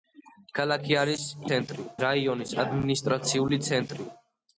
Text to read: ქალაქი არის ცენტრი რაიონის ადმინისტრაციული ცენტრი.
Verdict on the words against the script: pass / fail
pass